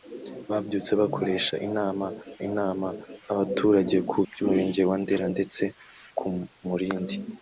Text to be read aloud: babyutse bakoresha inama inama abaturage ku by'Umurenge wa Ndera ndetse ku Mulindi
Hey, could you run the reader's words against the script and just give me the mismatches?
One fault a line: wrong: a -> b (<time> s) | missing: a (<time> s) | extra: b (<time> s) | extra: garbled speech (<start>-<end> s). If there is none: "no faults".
no faults